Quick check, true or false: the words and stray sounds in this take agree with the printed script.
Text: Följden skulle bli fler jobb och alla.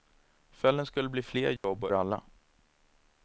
false